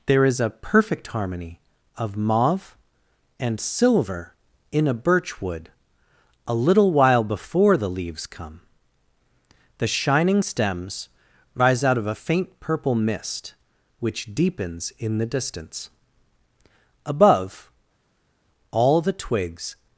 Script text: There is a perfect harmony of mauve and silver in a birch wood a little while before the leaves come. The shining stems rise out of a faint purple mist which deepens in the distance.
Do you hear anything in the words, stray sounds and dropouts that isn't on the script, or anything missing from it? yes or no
yes